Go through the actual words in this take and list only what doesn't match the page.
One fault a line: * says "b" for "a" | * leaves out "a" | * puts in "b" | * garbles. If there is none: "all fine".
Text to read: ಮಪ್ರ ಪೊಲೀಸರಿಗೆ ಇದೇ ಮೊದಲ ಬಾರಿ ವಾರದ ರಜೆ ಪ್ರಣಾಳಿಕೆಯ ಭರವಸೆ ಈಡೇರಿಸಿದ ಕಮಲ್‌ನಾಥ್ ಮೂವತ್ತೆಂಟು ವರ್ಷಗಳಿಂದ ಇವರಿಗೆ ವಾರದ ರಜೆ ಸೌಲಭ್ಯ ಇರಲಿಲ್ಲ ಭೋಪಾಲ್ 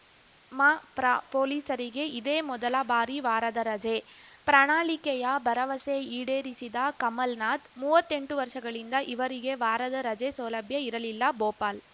all fine